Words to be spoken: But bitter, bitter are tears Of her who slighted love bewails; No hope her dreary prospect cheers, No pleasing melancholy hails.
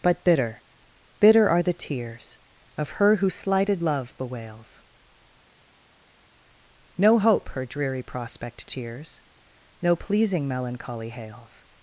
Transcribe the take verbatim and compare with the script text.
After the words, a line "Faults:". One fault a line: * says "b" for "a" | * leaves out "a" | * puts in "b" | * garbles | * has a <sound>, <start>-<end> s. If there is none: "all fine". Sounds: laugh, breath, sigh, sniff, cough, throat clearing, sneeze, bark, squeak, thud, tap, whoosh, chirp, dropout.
But bitter, bitter are the tears Of her who slighted love bewails; No hope her dreary prospect cheers, No pleasing melancholy hails.
Faults:
* puts in "the"